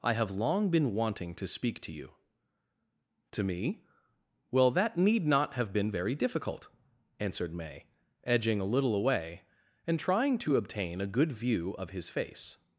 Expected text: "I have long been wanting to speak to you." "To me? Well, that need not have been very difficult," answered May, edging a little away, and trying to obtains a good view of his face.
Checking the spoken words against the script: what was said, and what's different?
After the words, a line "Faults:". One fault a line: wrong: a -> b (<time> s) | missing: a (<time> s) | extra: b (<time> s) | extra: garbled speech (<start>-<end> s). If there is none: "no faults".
"I have long been wanting to speak to you." "To me? Well, that need not have been very difficult," answered May, edging a little away, and trying to obtain a good view of his face.
Faults:
wrong: obtains -> obtain (10.5 s)